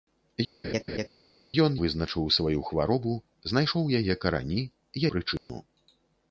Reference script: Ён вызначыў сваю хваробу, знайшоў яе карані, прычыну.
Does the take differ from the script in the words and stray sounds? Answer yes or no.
yes